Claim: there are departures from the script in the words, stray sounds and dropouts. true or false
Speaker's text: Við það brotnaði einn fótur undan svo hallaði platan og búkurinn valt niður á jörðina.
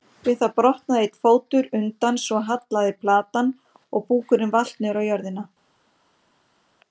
false